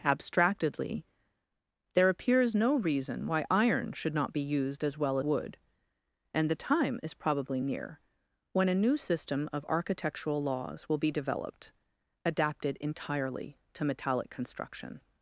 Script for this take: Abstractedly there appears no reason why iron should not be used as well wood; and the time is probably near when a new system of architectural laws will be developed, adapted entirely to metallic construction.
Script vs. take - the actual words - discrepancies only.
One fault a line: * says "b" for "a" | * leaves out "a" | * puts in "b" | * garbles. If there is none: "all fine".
all fine